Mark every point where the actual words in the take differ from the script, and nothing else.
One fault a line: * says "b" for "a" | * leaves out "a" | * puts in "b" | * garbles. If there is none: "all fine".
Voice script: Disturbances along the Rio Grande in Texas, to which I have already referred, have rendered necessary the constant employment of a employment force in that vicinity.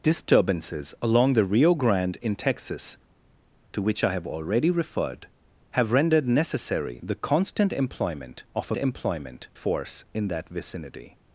all fine